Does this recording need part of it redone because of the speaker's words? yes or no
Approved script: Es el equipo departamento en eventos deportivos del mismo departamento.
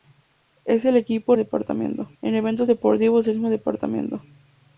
no